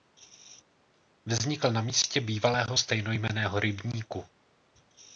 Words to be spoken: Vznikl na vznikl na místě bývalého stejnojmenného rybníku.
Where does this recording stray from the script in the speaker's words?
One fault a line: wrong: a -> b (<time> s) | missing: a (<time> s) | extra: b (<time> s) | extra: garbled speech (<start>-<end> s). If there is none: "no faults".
missing: vznikl na (1.8 s)